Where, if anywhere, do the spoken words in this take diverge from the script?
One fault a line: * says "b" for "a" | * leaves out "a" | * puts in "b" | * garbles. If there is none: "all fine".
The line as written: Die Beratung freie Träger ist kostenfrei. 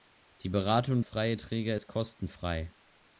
all fine